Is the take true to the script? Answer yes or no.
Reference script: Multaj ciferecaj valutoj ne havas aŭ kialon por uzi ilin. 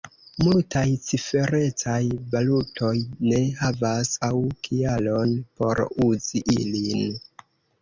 yes